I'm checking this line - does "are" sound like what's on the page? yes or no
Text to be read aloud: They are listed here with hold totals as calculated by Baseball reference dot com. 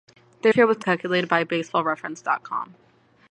no